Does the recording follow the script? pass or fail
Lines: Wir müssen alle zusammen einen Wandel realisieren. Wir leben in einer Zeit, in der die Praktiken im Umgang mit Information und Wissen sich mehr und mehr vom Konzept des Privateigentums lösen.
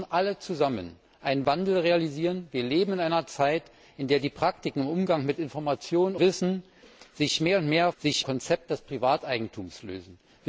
fail